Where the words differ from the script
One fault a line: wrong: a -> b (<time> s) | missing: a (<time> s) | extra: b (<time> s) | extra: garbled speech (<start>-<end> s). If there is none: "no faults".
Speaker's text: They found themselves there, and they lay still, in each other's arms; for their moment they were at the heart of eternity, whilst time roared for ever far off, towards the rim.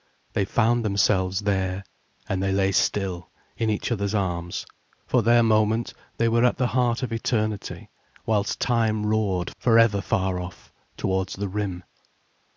no faults